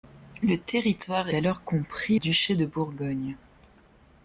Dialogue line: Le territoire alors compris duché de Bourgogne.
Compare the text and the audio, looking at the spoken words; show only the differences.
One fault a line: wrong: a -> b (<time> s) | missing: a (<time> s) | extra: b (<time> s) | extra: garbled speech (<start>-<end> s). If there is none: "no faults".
no faults